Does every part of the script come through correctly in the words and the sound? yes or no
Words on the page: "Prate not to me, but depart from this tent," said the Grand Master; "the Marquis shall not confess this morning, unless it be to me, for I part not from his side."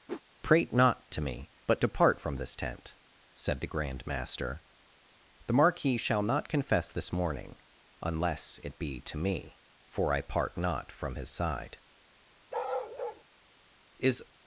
no